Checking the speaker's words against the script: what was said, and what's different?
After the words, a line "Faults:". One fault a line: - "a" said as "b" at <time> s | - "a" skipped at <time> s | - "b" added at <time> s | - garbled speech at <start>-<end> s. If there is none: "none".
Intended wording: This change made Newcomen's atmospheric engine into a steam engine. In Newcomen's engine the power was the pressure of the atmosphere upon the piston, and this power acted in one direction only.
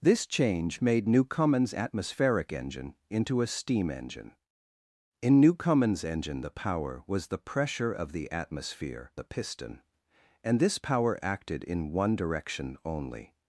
This change made Newcomen's atmospheric engine into a steam engine. In Newcomen's engine the power was the pressure of the atmosphere the piston, and this power acted in one direction only.
Faults:
- "upon" skipped at 9.1 s